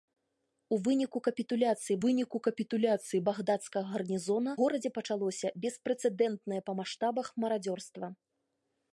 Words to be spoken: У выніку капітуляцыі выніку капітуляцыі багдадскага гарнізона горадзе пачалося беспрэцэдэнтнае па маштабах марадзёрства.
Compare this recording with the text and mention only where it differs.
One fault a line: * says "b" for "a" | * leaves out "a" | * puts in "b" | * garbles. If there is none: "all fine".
all fine